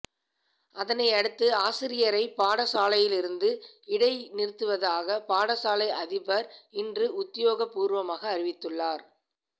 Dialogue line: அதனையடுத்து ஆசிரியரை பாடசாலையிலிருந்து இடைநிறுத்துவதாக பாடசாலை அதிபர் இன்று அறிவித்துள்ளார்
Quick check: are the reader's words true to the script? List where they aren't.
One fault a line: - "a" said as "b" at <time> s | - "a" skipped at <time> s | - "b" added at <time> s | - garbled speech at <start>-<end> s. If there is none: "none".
- "உத்தியோகபூர்வமாக" added at 7.2 s